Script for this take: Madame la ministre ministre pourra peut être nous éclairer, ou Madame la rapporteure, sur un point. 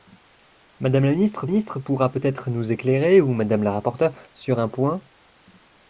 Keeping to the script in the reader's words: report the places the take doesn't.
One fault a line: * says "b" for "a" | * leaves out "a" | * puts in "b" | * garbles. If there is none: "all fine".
all fine